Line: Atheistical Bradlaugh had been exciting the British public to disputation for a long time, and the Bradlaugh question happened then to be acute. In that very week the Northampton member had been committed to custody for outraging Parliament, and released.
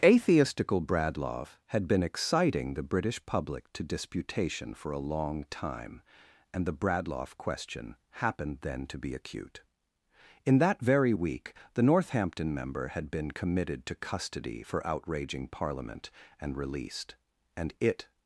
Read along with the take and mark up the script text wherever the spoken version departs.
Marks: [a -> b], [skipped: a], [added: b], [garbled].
Atheistical Bradlaugh had been exciting the British public to disputation for a long time, and the Bradlaugh question happened then to be acute. In that very week the Northampton member had been committed to custody for outraging Parliament, and released. [added: And it]